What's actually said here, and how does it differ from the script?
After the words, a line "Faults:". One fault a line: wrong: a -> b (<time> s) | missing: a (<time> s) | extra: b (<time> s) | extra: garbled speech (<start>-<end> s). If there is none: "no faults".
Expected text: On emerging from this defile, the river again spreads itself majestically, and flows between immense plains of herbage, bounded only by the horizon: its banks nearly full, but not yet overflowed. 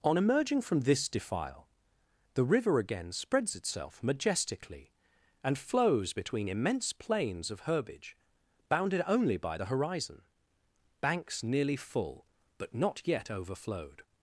On emerging from this defile, the river again spreads itself majestically, and flows between immense plains of herbage, bounded only by the horizon: banks nearly full, but not yet overflowed.
Faults:
missing: its (10.2 s)